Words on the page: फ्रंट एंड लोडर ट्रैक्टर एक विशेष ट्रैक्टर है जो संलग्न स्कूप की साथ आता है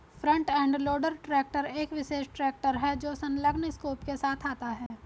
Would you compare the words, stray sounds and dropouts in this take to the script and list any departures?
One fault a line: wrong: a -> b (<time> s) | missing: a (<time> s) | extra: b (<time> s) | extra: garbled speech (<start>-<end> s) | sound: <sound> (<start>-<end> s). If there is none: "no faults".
wrong: की -> के (4.0 s)
sound: dropout (4.9-4.9 s)